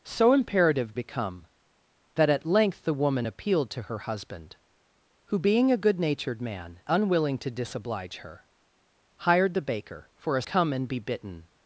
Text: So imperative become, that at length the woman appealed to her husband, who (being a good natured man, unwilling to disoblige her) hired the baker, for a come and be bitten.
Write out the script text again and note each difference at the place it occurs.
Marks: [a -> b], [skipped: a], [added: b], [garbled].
So imperative become, that at length the woman appealed to her husband, who (being a good natured man, unwilling to disoblige her) hired the baker, for a come and be bitten.